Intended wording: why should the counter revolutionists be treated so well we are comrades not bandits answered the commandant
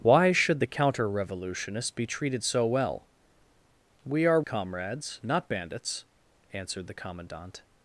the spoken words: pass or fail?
pass